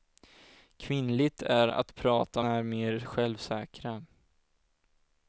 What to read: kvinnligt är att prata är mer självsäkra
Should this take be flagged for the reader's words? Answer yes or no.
no